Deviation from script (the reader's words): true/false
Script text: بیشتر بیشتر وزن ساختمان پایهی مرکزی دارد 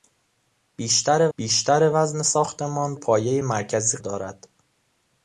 false